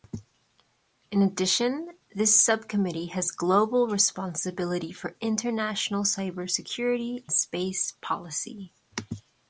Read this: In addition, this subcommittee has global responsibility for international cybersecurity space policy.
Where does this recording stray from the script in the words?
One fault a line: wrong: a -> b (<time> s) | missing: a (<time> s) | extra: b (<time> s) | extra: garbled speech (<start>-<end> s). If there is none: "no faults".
no faults